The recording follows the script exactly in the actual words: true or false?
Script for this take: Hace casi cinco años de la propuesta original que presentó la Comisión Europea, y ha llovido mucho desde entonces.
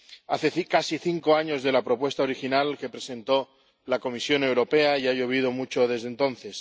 true